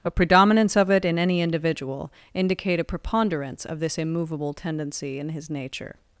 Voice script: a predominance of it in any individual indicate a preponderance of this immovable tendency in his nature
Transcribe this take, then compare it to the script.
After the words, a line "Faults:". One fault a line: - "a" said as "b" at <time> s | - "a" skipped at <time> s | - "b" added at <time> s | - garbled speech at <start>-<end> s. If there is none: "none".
a predominance of it in any individual indicate a preponderance of this immovable tendency in his nature
Faults:
none